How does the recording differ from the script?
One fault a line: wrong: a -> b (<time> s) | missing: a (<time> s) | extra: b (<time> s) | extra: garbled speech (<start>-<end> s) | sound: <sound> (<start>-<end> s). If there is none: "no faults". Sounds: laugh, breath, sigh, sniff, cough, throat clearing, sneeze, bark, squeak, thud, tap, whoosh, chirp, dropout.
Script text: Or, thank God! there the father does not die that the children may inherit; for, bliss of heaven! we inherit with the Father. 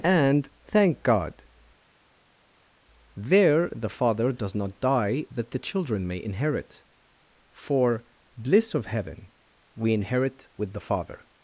wrong: Or -> And (0.0 s)